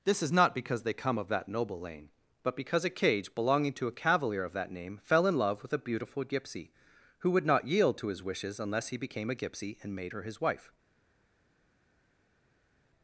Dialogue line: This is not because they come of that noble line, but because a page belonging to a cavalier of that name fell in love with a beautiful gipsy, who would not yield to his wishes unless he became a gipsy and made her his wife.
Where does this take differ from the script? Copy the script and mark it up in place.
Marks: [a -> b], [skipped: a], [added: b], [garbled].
This is not because they come of that noble [line, -> lane] but because a [page -> cage] belonging to a cavalier of that name fell in love with a beautiful gipsy, who would not yield to his wishes unless he became a gipsy and made her his wife.